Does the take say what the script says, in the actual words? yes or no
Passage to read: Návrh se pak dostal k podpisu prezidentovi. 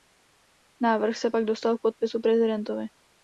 yes